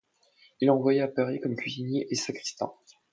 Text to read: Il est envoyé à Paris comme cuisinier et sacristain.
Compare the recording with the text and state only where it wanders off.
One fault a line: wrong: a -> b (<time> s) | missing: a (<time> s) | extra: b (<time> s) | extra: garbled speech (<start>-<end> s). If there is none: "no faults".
no faults